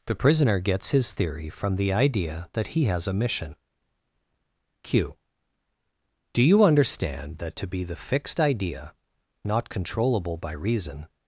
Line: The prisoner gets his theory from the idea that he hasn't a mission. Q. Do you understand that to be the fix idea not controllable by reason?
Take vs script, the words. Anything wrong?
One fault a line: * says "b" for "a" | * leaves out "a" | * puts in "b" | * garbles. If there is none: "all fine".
* says "has" for "hasn't"
* says "fixed" for "fix"